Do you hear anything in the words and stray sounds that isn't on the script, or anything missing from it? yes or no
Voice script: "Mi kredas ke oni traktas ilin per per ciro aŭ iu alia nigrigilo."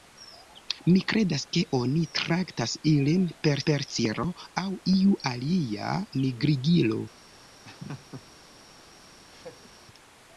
yes